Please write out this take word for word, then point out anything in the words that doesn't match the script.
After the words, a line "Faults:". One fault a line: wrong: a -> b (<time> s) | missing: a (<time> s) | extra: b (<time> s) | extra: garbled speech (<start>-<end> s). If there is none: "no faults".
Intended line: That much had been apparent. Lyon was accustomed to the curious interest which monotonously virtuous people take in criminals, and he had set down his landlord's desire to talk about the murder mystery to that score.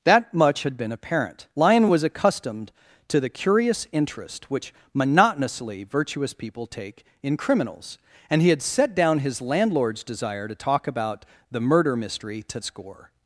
That much had been apparent. Lyon was accustomed to the curious interest which monotonously virtuous people take in criminals, and he had set down his landlord's desire to talk about the murder mystery to score.
Faults:
missing: that (12.6 s)